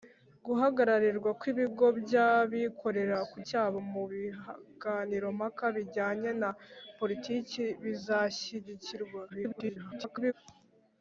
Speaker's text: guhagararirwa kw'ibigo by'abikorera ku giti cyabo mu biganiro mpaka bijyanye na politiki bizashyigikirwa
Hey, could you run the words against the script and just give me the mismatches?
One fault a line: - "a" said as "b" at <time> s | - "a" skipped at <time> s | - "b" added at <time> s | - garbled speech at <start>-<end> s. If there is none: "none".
- "giti" skipped at 3.4 s
- garbled speech at 9.3-10.3 s